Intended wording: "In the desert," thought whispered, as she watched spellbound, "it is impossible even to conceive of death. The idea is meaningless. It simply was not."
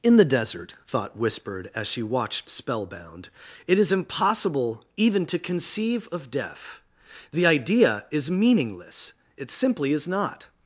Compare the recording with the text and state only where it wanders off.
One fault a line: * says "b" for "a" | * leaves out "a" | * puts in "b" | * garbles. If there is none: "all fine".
* says "is" for "was"